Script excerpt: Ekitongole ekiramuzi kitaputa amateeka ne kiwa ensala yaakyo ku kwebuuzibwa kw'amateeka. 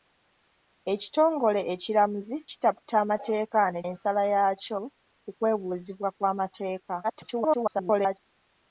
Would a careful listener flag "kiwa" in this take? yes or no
yes